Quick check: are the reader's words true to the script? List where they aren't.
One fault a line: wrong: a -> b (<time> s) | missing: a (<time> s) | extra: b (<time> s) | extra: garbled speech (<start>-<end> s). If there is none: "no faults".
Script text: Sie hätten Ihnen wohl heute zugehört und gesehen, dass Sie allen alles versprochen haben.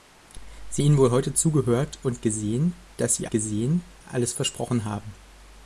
missing: hätten (0.8 s)
wrong: allen -> gesehen (3.3 s)